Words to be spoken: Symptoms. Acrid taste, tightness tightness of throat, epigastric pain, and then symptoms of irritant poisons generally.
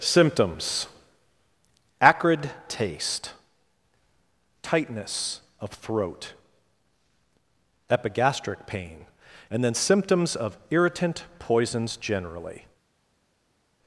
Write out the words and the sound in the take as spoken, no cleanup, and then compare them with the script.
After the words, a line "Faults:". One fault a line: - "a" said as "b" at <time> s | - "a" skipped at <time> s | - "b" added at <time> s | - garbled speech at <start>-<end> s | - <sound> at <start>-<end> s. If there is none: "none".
Symptoms. Acrid taste, tightness of throat, epigastric pain, and then symptoms of irritant poisons generally.
Faults:
- "tightness" skipped at 5.4 s